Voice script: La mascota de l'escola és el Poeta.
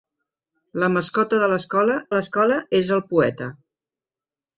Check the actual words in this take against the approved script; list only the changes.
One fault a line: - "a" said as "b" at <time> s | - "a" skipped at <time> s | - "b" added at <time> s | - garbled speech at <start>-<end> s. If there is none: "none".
- "l'escola" added at 2.1 s